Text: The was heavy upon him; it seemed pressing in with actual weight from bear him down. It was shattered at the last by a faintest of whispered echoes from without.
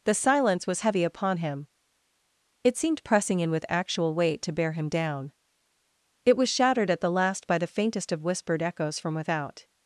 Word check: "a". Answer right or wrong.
wrong